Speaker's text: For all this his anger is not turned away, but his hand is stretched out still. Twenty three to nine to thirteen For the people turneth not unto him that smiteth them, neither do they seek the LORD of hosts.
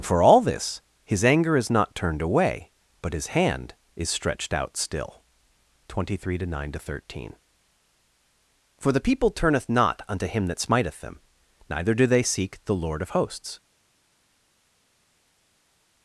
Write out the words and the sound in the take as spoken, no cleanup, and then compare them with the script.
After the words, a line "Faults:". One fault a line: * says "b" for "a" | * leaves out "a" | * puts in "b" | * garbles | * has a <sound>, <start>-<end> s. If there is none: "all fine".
For all this his anger is not turned away, but his hand is stretched out still. Twenty three to nine to thirteen For the people turneth not unto him that smiteth them, neither do they seek the LORD of hosts.
Faults:
all fine